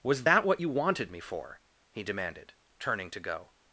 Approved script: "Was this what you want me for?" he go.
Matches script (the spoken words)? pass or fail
fail